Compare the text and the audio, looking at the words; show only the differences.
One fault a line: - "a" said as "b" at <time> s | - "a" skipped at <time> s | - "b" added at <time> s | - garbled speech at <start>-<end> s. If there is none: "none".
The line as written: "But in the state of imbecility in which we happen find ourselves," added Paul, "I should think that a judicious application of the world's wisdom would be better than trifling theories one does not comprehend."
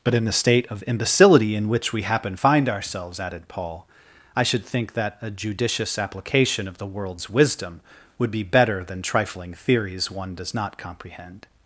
none